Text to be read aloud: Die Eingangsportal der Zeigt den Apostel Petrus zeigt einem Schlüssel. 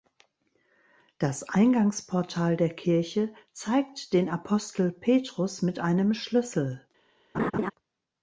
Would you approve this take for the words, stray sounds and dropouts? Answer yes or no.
no